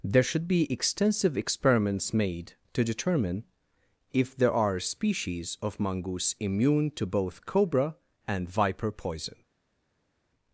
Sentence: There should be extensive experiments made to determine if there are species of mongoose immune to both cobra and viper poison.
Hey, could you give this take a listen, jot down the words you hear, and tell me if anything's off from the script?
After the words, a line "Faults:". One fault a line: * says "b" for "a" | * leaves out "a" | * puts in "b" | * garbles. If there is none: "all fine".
There should be extensive experiments made to determine if there are species of mongoose immune to both cobra and viper poison.
Faults:
all fine